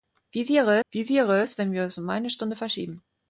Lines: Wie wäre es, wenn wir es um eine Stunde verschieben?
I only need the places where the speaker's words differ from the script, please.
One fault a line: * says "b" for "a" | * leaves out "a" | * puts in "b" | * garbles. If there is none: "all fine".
* puts in "wie wäre"